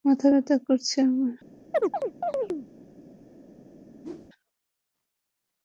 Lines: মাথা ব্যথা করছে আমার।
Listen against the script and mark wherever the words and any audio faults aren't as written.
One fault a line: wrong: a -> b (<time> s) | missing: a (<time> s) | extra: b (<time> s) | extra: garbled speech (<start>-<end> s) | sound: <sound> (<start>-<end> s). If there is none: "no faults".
sound: chirp (1.7-2.7 s)
sound: whoosh (4.0-4.3 s)